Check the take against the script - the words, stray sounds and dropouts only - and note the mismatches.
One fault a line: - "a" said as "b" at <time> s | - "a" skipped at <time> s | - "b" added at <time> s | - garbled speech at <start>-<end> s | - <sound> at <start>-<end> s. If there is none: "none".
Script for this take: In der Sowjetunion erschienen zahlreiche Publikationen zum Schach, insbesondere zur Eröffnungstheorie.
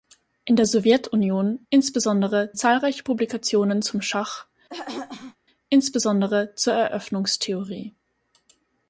- "erschienen" said as "insbesondere" at 1.7 s
- throat clearing at 4.7-5.4 s